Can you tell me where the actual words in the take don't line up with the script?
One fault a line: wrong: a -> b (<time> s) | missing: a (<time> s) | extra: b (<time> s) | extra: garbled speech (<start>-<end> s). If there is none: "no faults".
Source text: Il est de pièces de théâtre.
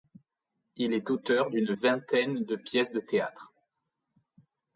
extra: auteur d'une vingtaine (1.1 s)